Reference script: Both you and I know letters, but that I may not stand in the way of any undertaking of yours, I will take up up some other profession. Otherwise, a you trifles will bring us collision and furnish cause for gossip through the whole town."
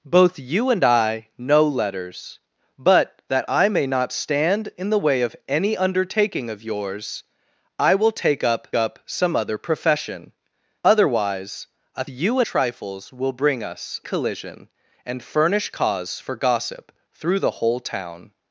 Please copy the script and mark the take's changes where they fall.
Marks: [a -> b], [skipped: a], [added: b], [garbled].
Both you and I know letters, but that I may not stand in the way of any undertaking of yours, I will take up up some other profession. Otherwise, a you trifles will bring us collision and furnish cause for gossip through the whole town."